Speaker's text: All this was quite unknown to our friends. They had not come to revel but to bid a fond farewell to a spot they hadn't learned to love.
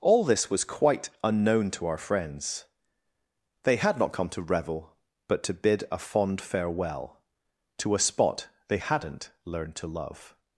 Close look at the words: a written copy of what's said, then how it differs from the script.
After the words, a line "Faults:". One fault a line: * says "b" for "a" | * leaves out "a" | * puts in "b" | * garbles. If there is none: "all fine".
All this was quite unknown to our friends. They had not come to revel but to bid a fond farewell to a spot they hadn't learned to love.
Faults:
all fine